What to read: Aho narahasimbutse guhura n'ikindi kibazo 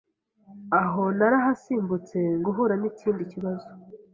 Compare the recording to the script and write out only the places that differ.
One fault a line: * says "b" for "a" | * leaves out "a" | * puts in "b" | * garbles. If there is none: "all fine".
all fine